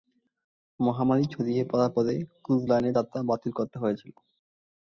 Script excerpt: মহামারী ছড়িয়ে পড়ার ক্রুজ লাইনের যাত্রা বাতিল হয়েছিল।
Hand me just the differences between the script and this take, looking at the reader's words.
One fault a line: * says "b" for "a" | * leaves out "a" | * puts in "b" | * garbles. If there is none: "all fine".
* puts in "পরে"
* puts in "করতে"